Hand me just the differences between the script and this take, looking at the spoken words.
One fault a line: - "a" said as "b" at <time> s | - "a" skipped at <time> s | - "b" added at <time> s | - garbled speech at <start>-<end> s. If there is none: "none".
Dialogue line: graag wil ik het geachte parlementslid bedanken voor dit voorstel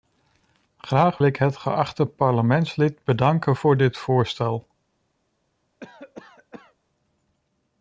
- "wil" skipped at 1.2 s